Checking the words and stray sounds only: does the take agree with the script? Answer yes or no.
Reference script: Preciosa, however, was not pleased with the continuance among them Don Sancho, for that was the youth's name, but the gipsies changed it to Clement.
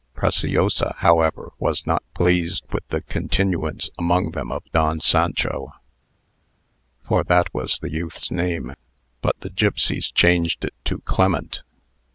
no